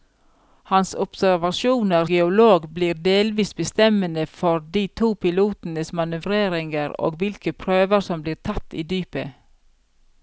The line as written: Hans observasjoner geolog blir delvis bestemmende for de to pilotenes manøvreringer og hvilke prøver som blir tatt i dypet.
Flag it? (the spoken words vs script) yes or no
no